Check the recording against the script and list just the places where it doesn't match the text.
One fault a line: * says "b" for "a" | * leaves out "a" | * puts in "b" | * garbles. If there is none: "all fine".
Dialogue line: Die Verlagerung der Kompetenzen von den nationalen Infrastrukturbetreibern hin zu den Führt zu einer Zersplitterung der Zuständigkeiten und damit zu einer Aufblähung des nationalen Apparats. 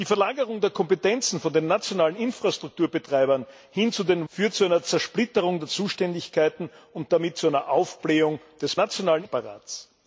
all fine